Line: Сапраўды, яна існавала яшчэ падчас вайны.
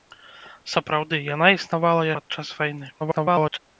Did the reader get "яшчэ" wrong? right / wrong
wrong